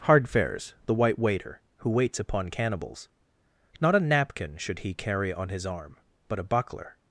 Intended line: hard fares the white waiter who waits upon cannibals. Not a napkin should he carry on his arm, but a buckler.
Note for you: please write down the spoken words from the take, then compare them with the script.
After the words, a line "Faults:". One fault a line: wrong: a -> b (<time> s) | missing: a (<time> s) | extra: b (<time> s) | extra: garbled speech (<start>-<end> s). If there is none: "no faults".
hard fares the white waiter who waits upon cannibals. Not a napkin should he carry on his arm, but a buckler.
Faults:
no faults